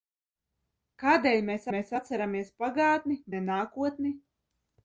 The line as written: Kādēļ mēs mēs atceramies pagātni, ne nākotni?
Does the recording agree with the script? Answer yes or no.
yes